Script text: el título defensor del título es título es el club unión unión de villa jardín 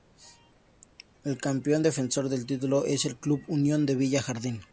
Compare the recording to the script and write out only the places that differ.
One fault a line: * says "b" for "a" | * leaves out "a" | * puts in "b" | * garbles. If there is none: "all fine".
* says "campeón" for "título"
* leaves out "título es"
* leaves out "unión"